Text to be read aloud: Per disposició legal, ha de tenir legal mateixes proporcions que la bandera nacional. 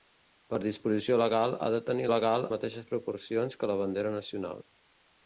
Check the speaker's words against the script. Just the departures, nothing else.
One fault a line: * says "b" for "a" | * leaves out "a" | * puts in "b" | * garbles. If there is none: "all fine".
all fine